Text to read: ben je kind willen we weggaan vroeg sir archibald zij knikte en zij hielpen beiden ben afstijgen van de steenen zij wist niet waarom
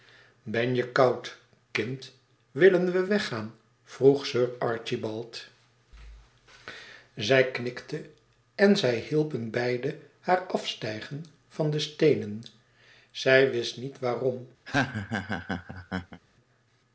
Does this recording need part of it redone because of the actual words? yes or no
yes